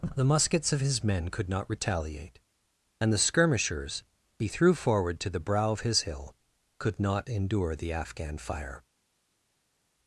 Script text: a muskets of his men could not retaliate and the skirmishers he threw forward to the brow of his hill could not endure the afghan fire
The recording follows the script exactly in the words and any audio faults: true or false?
false